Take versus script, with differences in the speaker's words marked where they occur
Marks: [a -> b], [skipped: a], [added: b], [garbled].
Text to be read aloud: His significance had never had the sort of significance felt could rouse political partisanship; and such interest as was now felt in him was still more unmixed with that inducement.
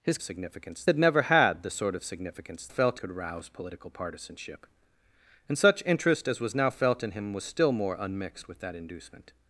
His significance had never had the sort of significance felt could rouse political partisanship; and such interest as was now felt in him was still more unmixed with that inducement.